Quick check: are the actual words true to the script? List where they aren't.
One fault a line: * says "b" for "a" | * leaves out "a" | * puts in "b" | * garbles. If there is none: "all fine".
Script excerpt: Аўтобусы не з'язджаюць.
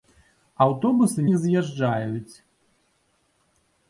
all fine